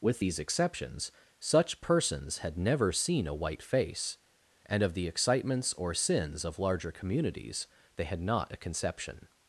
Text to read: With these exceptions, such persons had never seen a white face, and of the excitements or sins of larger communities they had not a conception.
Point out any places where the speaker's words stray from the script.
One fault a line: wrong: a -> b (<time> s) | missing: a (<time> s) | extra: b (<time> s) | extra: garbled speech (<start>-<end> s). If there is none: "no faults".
no faults